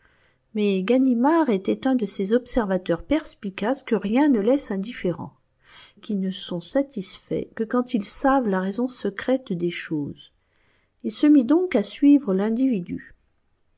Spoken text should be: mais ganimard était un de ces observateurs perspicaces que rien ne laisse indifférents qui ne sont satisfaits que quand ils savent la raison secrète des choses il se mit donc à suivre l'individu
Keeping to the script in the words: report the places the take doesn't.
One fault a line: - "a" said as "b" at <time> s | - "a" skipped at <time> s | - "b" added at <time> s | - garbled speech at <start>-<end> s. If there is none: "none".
none